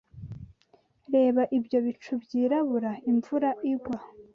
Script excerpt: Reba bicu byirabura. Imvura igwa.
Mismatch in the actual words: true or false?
true